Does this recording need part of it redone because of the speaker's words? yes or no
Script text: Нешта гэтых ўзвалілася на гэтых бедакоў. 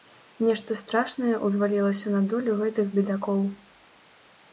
yes